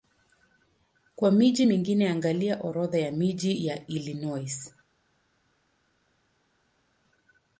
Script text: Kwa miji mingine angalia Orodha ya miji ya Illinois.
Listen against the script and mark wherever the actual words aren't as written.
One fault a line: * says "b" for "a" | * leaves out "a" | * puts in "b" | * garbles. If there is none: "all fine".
all fine